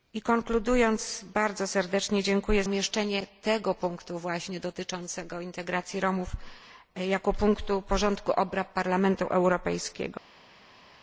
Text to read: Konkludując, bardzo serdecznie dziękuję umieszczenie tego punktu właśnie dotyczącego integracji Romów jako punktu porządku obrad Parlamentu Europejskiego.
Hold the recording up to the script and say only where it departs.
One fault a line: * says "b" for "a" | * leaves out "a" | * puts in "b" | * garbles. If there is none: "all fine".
all fine